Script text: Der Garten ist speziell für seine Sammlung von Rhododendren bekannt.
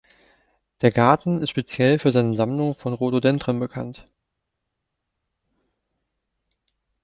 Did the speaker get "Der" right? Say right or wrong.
right